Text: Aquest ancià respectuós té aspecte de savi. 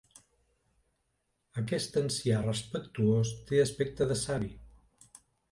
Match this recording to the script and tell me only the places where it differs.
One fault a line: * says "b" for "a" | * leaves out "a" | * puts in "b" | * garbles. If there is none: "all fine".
all fine